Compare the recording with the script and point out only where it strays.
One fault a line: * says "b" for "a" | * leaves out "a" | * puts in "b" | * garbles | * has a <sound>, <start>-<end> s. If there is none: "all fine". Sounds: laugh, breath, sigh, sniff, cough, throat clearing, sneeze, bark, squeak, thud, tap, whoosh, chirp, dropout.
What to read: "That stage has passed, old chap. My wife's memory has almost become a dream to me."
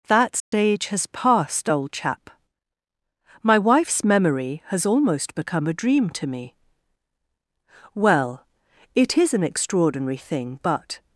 * has a dropout, 0.4-0.5 s
* puts in "Well it is an extraordinary thing but"